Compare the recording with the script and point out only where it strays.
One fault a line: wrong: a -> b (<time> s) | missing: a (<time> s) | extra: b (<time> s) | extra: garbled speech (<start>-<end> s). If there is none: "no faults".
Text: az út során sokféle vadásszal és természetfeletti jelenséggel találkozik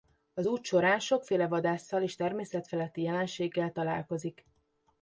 no faults